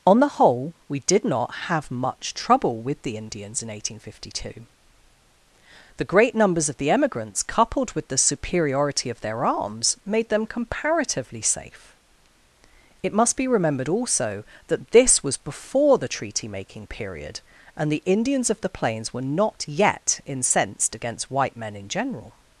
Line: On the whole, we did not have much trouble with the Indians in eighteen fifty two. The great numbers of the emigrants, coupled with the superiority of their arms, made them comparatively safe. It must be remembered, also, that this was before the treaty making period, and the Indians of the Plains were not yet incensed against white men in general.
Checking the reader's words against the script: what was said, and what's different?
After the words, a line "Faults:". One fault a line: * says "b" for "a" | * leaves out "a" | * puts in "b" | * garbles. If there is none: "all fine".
On the whole, we did not have much trouble with the Indians in eighteen fifty two. The great numbers of the emigrants, coupled with the superiority of their arms, made them comparatively safe. It must be remembered, also, that this was before the treaty making period, and the Indians of the Plains were not yet incensed against white men in general.
Faults:
all fine